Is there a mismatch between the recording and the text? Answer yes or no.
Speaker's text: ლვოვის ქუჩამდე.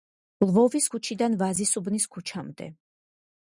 yes